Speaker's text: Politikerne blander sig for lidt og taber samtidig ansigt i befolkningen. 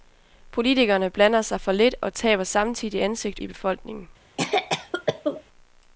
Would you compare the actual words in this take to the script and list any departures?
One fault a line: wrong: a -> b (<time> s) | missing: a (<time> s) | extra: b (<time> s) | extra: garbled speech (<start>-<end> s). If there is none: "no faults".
no faults